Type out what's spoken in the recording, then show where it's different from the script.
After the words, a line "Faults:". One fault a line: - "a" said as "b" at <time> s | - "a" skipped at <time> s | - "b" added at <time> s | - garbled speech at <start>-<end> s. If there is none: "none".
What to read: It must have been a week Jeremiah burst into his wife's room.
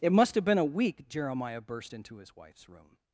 It must have been a week Jeremiah burst into his wife's room.
Faults:
none